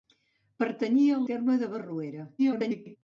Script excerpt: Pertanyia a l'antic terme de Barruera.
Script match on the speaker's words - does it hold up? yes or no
no